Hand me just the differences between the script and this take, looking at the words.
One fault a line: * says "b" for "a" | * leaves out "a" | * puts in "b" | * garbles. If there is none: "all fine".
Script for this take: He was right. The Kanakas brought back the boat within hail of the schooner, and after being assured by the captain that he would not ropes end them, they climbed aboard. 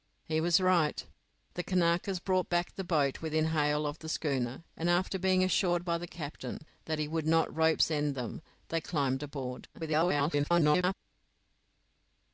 * garbles